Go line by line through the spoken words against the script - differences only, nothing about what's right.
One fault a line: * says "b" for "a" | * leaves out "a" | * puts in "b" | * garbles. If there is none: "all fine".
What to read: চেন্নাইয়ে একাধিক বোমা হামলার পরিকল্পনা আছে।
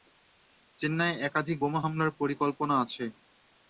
all fine